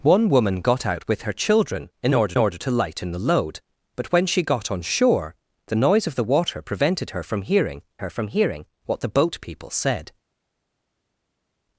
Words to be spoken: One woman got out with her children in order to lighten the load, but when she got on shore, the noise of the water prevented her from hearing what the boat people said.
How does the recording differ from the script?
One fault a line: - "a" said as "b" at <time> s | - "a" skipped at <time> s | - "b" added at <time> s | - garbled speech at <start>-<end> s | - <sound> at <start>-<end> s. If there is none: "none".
- "order" added at 2.4 s
- "her from hearing" added at 8.0 s